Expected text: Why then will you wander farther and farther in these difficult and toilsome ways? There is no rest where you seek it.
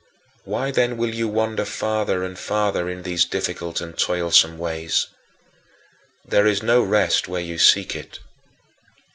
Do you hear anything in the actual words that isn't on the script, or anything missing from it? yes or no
no